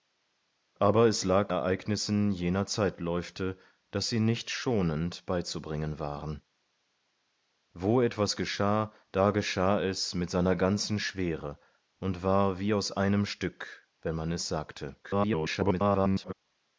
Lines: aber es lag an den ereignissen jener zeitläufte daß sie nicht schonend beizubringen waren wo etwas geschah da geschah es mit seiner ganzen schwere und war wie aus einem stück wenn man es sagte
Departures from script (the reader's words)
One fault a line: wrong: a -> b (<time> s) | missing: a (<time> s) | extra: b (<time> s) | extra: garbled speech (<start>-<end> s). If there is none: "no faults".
missing: an den (1.5 s)
extra: garbled speech (15.0-16.3 s)